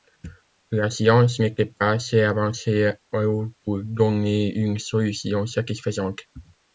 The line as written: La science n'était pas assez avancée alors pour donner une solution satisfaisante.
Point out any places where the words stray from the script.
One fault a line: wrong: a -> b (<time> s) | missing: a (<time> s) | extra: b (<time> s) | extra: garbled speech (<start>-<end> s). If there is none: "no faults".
no faults